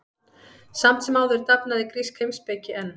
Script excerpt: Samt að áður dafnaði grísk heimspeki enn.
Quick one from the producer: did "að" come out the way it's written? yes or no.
no